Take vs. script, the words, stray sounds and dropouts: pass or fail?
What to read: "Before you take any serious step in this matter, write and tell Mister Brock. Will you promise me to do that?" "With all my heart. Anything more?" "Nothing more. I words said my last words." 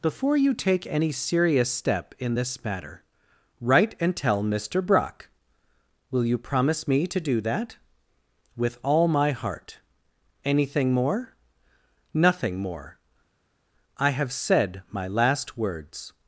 fail